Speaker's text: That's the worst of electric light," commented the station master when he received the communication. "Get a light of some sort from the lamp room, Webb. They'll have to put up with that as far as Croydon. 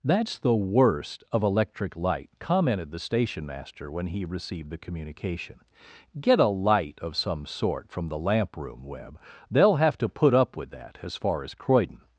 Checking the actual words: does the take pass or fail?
pass